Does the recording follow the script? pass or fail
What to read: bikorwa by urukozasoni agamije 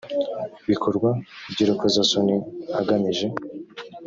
pass